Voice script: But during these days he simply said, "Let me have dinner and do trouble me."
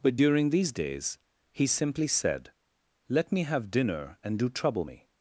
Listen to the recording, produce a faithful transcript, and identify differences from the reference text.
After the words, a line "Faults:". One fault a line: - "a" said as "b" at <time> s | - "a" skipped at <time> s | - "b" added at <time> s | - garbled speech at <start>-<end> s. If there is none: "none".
But during these days he simply said, "Let me have dinner and do trouble me."
Faults:
none